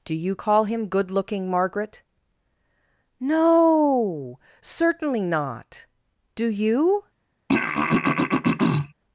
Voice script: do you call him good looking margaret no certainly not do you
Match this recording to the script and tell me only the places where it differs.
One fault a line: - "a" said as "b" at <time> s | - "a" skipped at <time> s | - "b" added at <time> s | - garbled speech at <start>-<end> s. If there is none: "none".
none